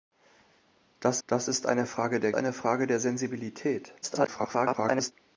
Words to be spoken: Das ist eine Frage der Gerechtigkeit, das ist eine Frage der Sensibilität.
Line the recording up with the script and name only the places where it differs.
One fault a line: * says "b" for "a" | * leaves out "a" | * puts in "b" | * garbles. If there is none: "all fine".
* puts in "das"
* leaves out "Gerechtigkeit das ist"
* garbles